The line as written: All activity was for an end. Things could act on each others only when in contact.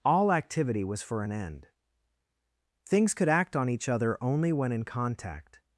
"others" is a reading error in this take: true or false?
true